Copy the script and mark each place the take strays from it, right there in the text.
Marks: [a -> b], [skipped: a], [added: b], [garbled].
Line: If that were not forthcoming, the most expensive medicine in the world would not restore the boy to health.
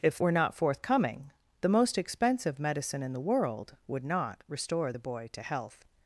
If [skipped: that] were not forthcoming, the most expensive medicine in the world would not restore the boy to health.